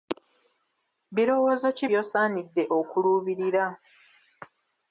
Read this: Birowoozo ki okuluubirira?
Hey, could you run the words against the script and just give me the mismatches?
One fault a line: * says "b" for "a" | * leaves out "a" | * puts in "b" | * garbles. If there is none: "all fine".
* puts in "by'osaanidde"